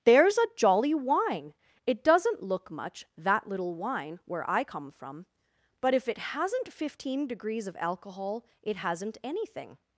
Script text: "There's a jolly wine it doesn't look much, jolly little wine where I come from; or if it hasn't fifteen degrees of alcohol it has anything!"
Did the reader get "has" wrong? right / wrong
wrong